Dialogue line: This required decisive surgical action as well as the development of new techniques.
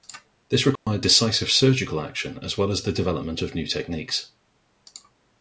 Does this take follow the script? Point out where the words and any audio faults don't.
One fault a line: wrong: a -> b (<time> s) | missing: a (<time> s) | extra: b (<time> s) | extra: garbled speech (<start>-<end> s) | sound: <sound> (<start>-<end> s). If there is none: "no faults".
sound: dropout (0.8-0.9 s)